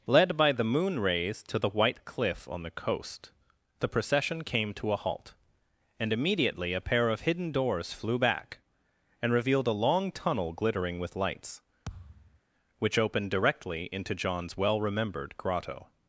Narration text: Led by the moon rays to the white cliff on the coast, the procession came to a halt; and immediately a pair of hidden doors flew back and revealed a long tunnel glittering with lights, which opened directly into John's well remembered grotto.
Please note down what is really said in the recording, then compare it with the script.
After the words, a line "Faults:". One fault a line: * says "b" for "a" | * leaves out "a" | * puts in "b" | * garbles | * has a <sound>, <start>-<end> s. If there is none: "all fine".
Led by the moon rays to the white cliff on the coast, the procession came to a halt; and immediately a pair of hidden doors flew back and revealed a long tunnel glittering with lights, which opened directly into John's well remembered grotto.
Faults:
* has a thud, 11.9-12.4 s